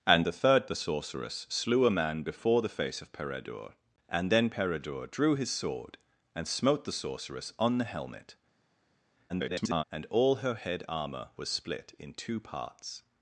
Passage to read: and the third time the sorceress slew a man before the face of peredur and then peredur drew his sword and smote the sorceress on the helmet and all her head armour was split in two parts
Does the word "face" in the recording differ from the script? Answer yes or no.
no